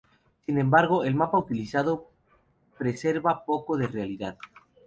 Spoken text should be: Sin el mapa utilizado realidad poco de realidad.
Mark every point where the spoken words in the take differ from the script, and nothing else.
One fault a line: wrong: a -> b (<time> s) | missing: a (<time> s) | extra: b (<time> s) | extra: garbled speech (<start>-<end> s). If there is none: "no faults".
extra: embargo (0.6 s)
wrong: realidad -> preserva (2.8 s)